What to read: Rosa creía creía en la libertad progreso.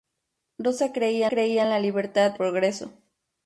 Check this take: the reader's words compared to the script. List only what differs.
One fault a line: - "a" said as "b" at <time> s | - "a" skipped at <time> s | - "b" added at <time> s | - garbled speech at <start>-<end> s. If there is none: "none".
none